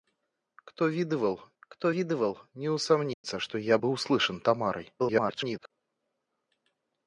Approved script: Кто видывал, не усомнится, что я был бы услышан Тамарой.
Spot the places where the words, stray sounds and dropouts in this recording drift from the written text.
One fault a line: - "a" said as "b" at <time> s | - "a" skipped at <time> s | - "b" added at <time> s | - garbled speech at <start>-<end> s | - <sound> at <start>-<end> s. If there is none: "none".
- "кто видывал" added at 1.6 s
- dropout at 3.1-3.2 s
- "был" skipped at 3.8 s
- garbled speech at 5.0-5.7 s